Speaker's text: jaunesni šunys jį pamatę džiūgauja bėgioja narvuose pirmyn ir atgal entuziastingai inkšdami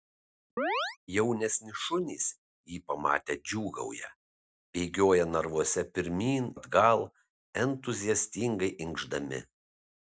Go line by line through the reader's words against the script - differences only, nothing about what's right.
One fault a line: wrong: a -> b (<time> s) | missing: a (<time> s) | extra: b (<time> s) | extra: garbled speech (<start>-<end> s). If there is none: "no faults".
missing: ir (6.5 s)